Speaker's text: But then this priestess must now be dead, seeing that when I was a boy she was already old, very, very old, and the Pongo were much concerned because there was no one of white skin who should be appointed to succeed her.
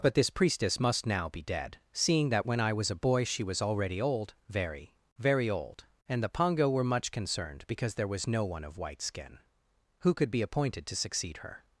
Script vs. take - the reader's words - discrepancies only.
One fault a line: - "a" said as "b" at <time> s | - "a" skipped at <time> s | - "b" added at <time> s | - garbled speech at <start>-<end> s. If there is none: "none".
- "then" skipped at 0.1 s
- "should" said as "could" at 10.2 s